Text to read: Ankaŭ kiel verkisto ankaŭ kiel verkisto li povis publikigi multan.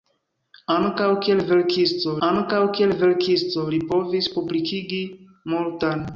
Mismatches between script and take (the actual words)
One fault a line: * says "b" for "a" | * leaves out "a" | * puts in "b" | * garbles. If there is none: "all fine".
all fine